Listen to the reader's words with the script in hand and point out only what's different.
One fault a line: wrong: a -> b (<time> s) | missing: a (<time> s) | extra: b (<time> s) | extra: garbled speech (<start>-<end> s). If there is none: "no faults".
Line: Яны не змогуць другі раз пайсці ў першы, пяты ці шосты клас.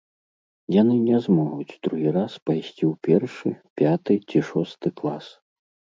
no faults